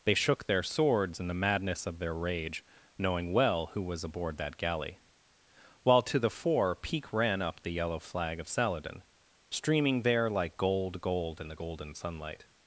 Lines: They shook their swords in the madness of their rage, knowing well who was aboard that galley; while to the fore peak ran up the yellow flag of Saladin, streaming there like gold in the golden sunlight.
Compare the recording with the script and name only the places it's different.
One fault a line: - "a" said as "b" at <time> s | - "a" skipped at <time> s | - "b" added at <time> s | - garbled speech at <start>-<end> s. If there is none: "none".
- "gold" added at 11.0 s